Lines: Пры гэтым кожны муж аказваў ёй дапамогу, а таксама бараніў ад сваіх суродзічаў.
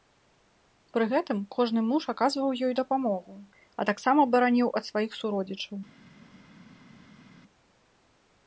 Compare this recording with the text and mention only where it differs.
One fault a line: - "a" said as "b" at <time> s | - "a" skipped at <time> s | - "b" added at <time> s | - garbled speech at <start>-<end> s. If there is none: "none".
none